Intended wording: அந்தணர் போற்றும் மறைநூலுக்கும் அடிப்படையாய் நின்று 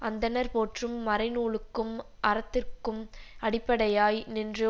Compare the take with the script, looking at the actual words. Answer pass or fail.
fail